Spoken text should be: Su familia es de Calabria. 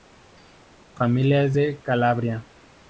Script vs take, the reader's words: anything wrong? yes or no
no